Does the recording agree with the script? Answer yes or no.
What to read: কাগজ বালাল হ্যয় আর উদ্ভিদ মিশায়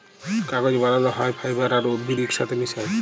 no